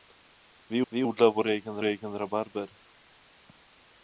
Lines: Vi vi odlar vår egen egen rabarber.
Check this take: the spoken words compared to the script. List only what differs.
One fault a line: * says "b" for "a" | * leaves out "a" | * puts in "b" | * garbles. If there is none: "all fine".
all fine